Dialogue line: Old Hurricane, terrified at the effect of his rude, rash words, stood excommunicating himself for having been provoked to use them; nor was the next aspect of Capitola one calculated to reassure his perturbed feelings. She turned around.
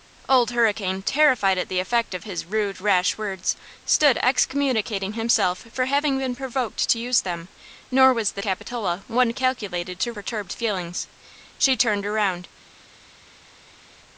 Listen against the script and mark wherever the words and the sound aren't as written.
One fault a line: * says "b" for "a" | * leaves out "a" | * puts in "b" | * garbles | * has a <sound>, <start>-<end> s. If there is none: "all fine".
* leaves out "next aspect of"
* leaves out "reassure his"